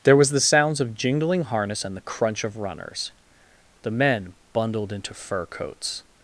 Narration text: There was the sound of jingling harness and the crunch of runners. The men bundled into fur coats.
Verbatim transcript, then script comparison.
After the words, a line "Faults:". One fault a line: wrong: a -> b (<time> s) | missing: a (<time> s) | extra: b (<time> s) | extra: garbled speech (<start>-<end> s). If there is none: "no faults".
There was the sounds of jingling harness and the crunch of runners. The men bundled into fur coats.
Faults:
wrong: sound -> sounds (0.4 s)